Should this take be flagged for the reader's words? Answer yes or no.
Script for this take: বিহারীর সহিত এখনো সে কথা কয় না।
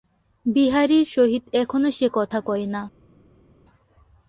no